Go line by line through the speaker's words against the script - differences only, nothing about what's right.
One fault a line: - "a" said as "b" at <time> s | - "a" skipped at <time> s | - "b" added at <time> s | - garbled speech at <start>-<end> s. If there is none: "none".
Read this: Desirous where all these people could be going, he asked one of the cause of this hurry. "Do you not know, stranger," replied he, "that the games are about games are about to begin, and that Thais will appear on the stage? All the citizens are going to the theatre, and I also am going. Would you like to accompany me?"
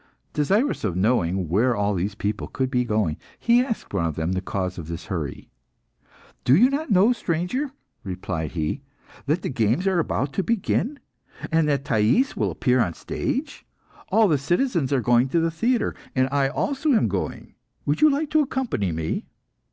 - "of knowing" added at 0.8 s
- "them" added at 4.2 s
- "games are about" skipped at 10.3 s